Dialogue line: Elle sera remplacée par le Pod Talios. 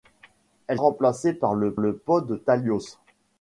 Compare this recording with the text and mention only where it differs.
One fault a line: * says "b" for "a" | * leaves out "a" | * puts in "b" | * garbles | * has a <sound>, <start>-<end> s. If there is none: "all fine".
* leaves out "sera"
* puts in "le"